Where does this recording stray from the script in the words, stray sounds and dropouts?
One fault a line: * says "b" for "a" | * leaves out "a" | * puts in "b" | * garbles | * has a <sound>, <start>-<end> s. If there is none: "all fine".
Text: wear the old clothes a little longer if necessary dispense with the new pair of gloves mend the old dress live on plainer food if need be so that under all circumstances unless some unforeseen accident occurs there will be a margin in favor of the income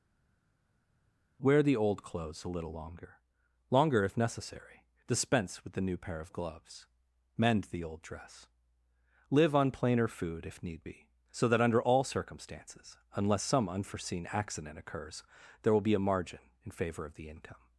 * puts in "longer"